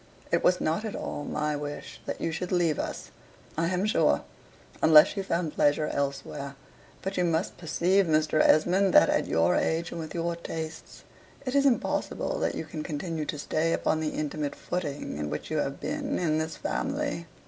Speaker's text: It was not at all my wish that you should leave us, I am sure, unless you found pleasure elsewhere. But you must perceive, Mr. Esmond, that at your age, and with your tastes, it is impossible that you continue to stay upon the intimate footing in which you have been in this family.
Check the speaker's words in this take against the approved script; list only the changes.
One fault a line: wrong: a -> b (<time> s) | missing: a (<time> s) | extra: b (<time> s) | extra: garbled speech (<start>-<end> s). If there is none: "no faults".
extra: can (12.6 s)